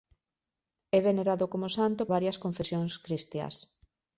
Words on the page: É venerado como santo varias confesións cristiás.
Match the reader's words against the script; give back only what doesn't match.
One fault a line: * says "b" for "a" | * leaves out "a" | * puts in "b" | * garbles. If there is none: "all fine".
all fine